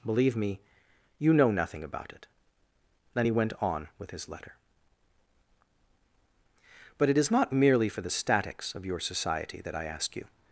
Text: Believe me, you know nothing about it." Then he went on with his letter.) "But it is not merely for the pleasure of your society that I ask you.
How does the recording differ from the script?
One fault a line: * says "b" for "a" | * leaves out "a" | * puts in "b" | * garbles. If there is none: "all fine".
* says "statics" for "pleasure"